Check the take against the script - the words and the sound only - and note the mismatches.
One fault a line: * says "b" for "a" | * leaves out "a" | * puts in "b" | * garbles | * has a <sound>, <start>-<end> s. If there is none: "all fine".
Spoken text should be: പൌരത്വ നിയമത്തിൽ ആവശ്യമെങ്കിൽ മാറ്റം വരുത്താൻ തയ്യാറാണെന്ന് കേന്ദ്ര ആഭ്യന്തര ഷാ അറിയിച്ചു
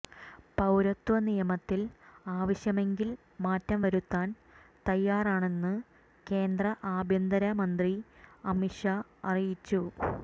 * puts in "മന്ത്രി അമിത്"